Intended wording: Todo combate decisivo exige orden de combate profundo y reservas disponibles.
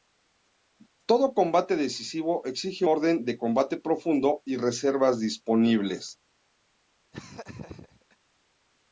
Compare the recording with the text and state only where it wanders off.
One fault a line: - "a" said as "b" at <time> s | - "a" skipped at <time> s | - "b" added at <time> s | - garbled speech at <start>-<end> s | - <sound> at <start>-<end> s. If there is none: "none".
- laugh at 7.1-8.2 s